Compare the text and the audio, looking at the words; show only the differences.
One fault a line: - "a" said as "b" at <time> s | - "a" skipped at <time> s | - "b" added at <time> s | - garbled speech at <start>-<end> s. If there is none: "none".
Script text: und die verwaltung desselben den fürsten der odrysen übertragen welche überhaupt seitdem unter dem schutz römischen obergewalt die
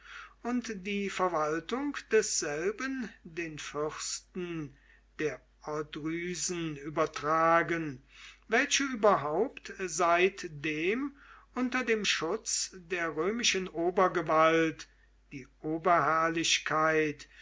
- "der" added at 12.7 s